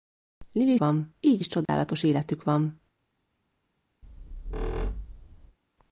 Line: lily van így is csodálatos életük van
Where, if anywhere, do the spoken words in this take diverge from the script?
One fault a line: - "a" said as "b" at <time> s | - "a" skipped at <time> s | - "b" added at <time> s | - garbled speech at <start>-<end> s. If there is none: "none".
none